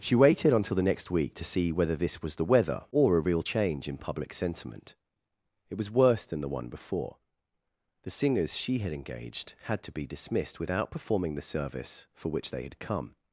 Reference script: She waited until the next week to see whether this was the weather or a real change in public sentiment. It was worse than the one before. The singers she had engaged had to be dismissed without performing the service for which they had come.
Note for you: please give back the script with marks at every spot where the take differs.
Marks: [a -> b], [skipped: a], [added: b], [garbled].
She waited until the next week to see whether this was the weather or a real change in public sentiment. It was worse than the one before. The singers she had engaged had to be dismissed without performing the service for which they had come.